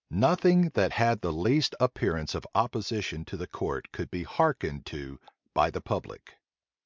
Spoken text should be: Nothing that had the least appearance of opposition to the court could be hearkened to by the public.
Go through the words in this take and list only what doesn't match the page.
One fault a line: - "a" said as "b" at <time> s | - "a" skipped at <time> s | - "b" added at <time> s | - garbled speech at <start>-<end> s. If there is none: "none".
none